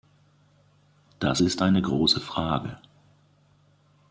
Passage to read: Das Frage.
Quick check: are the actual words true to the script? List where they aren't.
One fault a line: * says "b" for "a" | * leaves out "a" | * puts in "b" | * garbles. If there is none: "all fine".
* puts in "ist eine große"